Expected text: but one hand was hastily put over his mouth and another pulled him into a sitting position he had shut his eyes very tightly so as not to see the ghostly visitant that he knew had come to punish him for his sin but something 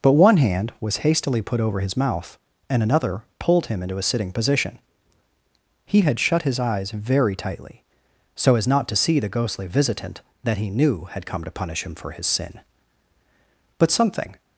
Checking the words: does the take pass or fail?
pass